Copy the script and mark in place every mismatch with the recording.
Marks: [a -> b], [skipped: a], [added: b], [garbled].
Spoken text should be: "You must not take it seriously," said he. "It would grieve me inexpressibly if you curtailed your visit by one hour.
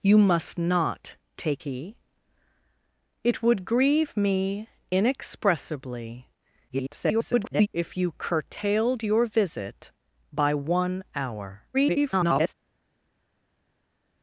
"You must not take [skipped: it seriously," said] he. "It would grieve me inexpressibly [garbled] if you curtailed your visit by one hour. [garbled]